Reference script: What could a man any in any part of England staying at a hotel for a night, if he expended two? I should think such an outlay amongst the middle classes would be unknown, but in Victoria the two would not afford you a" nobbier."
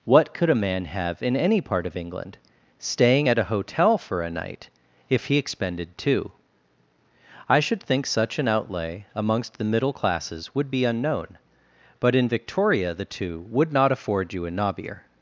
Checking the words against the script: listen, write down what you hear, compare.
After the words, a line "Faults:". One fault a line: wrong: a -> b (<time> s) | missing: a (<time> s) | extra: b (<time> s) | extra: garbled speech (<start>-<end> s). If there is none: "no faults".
What could a man have in any part of England staying at a hotel for a night, if he expended two? I should think such an outlay amongst the middle classes would be unknown, but in Victoria the two would not afford you a" nobbier."
Faults:
wrong: any -> have (0.8 s)